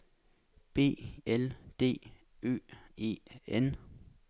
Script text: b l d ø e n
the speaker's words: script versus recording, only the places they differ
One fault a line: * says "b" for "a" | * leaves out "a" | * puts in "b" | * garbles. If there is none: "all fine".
all fine